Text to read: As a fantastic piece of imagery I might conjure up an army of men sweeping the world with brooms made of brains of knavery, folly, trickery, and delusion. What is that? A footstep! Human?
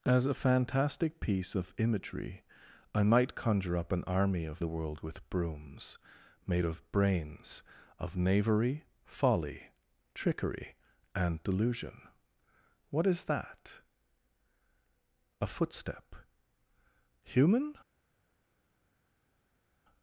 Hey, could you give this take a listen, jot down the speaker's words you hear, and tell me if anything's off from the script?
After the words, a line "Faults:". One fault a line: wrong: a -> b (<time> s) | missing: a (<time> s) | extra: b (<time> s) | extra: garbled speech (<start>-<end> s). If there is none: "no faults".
As a fantastic piece of imagery I might conjure up an army of the world with brooms made of brains of knavery, folly, trickery, and delusion. What is that? A footstep! Human?
Faults:
missing: men sweeping (4.6 s)